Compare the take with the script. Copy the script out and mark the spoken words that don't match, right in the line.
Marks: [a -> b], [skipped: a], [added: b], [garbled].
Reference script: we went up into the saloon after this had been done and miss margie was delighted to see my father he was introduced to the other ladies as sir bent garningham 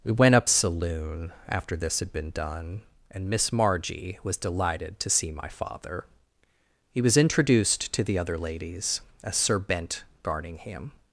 we went up [skipped: into the] saloon after this had been done and miss margie was delighted to see my father he was introduced to the other ladies as sir bent garningham